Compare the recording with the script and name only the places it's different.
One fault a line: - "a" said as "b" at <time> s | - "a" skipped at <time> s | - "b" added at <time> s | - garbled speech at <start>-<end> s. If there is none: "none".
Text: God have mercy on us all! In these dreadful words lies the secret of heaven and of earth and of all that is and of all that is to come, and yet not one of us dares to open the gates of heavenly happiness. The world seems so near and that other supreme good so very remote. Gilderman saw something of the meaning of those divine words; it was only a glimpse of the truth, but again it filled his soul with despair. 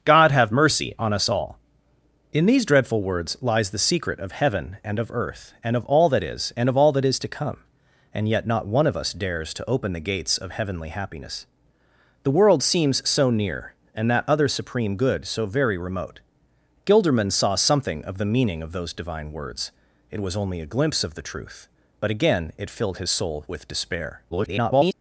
- garbled speech at 24.3-24.9 s